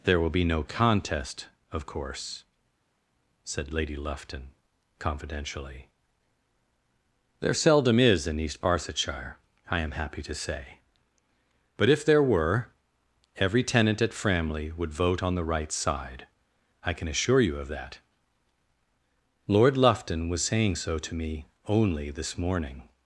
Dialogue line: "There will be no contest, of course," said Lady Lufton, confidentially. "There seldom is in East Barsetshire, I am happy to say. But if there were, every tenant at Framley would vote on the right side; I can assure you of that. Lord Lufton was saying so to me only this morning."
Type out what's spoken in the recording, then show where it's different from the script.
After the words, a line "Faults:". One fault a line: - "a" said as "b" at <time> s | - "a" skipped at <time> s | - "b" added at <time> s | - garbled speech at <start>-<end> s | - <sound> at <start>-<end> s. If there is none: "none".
"There will be no contest, of course," said Lady Lufton, confidentially. "There seldom is in East Barsetshire, I am happy to say. But if there were, every tenant at Framley would vote on the right side; I can assure you of that. Lord Lufton was saying so to me only this morning."
Faults:
none